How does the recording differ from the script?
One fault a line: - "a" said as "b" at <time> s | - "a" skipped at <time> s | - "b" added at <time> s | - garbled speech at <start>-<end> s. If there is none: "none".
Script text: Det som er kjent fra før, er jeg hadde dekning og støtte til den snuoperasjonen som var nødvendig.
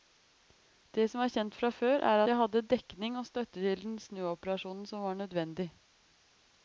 none